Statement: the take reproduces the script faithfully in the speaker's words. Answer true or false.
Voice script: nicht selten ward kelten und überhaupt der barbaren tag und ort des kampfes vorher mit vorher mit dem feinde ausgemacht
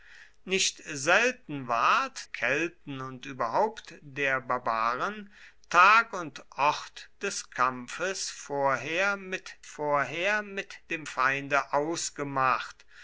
true